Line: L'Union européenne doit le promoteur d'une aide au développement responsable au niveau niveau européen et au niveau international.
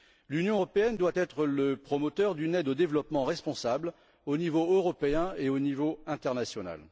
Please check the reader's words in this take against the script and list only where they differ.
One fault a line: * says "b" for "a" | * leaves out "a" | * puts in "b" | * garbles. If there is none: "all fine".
* puts in "être"
* leaves out "niveau"